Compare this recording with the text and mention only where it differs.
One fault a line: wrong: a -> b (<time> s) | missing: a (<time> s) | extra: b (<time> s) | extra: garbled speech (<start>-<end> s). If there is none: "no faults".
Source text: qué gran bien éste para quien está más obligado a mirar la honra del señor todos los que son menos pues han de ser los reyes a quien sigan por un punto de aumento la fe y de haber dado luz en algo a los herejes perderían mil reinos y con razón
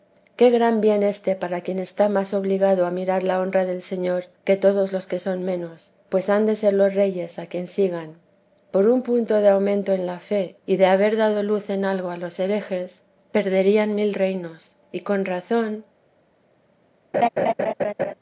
extra: que (4.5 s)
extra: en (9.9 s)